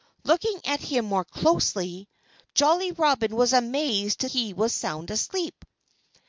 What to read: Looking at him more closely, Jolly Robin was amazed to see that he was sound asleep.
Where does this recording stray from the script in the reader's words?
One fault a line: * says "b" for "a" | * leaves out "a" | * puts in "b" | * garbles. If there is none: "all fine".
* leaves out "see that"